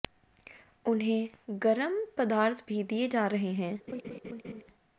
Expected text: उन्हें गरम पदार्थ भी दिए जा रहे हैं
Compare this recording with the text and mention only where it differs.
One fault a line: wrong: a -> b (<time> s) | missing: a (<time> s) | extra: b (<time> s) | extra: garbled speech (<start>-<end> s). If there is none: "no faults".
no faults